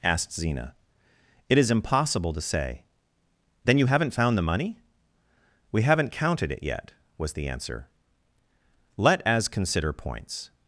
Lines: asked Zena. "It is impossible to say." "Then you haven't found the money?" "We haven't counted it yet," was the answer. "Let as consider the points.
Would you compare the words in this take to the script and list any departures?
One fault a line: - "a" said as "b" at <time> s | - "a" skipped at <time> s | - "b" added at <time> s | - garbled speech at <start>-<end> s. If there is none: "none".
- "the" skipped at 9.9 s